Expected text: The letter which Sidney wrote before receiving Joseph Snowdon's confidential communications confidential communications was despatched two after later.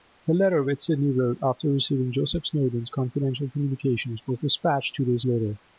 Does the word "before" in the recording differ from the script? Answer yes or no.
yes